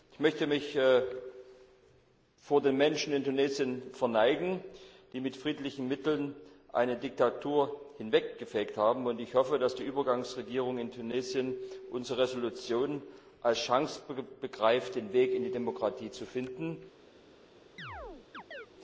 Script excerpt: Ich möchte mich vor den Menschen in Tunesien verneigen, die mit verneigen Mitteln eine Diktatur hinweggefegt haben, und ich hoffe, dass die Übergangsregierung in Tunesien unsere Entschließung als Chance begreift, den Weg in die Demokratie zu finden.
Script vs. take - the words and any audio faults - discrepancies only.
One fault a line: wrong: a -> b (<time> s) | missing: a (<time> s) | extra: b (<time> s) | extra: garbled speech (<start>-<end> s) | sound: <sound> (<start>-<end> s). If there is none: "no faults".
wrong: verneigen -> friedlichen (5.4 s)
sound: chirp (17.8-18.7 s)